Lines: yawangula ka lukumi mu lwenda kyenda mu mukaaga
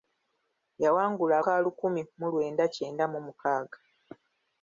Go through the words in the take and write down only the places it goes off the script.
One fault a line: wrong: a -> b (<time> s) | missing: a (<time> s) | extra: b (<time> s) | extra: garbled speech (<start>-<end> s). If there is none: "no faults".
no faults